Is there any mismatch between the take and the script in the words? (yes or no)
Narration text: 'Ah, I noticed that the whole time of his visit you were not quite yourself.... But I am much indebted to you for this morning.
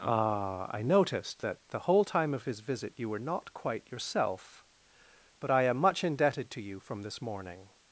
yes